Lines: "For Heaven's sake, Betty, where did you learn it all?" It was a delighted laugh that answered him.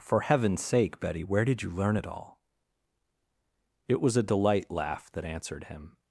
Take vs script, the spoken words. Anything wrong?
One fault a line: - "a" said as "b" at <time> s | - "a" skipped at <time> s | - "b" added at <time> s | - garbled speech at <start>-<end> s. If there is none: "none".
- "delighted" said as "delight" at 4.2 s